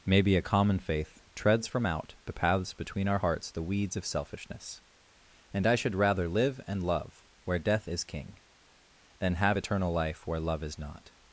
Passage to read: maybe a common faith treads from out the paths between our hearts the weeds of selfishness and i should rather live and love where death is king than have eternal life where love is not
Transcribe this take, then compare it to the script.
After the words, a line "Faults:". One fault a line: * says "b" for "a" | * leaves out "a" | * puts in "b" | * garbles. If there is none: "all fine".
maybe a common faith treads from out the paths between our hearts the weeds of selfishness and i should rather live and love where death is king than have eternal life where love is not
Faults:
all fine